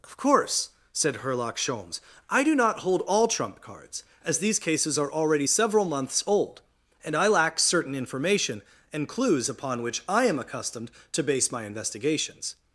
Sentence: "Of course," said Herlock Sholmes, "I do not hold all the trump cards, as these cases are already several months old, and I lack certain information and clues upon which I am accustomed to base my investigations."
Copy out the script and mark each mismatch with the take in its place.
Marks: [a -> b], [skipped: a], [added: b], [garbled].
"Of course," said Herlock Sholmes, "I do not hold all [skipped: the] trump cards, as these cases are already several months old, and I lack certain information and clues upon which I am accustomed to base my investigations."